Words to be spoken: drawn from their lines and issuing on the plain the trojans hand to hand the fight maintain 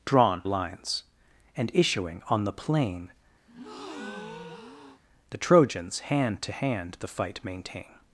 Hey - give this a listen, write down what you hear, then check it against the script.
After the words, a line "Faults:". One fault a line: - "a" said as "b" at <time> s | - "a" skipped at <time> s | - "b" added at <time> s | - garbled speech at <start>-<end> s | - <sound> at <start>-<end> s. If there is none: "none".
drawn lines and issuing on the plain the trojans hand to hand the fight maintain
Faults:
- "from their" skipped at 0.4 s
- breath at 3.5-5.0 s